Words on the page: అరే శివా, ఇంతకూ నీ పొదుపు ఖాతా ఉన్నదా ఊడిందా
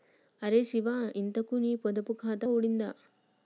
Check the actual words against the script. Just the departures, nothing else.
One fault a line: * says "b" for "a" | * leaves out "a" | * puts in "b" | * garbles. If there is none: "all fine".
* leaves out "ఉన్నదా"